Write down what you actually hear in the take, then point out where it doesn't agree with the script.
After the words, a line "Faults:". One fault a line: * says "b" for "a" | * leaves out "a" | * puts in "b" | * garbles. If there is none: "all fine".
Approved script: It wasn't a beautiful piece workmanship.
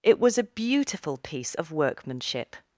It was a beautiful piece of workmanship.
Faults:
* says "was" for "wasn't"
* puts in "of"